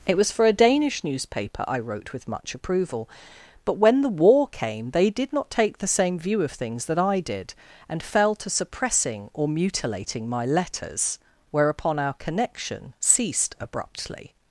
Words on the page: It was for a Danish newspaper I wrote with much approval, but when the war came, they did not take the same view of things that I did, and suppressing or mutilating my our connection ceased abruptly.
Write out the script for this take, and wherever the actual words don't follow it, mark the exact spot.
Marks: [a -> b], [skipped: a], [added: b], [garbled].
It was for a Danish newspaper I wrote with much approval, but when the war came, they did not take the same view of things that I did, and [added: fell to] suppressing or mutilating my [added: letters whereupon] our connection ceased abruptly.